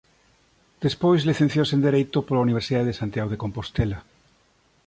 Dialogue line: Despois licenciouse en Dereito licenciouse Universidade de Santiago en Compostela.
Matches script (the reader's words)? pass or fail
fail